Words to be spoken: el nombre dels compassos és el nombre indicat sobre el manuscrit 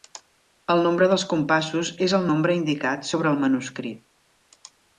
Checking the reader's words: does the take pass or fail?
pass